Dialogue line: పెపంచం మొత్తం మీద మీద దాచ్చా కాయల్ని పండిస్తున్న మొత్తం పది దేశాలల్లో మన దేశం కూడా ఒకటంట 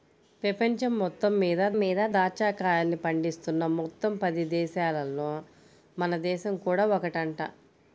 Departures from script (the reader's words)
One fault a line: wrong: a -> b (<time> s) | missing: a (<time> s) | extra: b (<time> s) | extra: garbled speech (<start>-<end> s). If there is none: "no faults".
no faults